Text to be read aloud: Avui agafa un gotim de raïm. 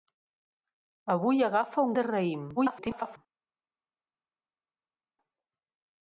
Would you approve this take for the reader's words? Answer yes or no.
no